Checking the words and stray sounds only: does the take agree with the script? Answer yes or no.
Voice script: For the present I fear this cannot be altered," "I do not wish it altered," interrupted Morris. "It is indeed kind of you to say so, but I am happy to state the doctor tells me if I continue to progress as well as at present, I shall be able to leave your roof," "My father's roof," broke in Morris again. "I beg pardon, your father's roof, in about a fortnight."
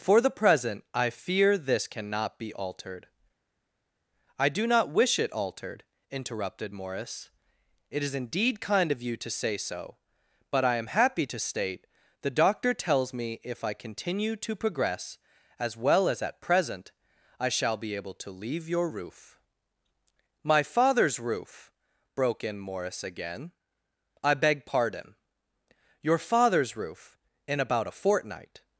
yes